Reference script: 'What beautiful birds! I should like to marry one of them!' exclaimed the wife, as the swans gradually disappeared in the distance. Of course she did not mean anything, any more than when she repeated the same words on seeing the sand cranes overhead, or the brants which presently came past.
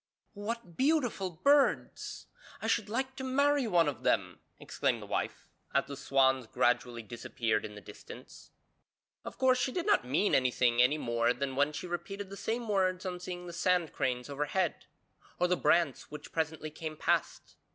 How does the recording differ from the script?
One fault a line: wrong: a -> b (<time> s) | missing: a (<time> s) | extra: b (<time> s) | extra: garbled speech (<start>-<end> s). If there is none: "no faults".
no faults